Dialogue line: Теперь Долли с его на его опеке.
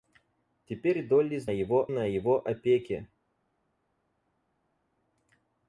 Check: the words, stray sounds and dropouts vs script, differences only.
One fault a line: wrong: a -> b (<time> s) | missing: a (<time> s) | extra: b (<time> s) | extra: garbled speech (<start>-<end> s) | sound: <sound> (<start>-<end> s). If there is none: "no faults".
no faults